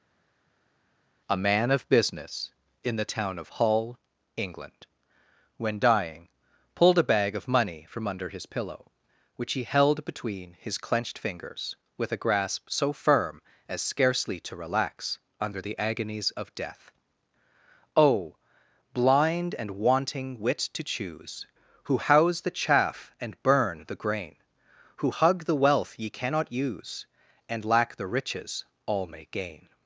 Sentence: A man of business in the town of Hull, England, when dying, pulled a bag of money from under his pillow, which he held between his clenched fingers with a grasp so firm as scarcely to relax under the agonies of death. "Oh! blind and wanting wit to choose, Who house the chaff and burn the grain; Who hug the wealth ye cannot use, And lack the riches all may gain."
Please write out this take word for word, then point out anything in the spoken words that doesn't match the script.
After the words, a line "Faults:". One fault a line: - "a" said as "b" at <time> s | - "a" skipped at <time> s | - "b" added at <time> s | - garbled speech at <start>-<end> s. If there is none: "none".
A man of business in the town of Hull, England, when dying, pulled a bag of money from under his pillow, which he held between his clenched fingers with a grasp so firm as scarcely to relax under the agonies of death. "Oh! blind and wanting wit to choose, Who house the chaff and burn the grain; Who hug the wealth ye cannot use, And lack the riches all may gain."
Faults:
none